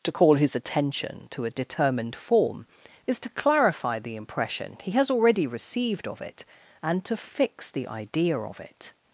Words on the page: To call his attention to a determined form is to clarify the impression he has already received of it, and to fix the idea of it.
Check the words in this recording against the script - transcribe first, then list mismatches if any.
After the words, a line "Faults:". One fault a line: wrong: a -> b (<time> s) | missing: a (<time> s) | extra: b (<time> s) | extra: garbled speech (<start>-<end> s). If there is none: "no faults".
To call his attention to a determined form is to clarify the impression he has already received of it, and to fix the idea of it.
Faults:
no faults